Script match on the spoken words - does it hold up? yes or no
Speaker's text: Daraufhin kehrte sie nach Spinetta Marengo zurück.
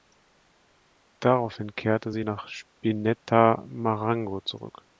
yes